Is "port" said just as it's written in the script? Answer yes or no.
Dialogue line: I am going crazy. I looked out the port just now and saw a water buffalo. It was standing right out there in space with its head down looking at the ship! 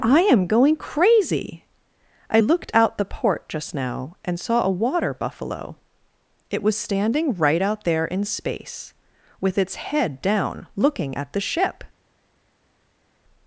yes